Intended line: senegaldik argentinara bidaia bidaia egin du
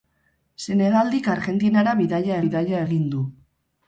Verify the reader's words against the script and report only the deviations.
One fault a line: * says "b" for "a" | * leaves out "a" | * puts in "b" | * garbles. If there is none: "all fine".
all fine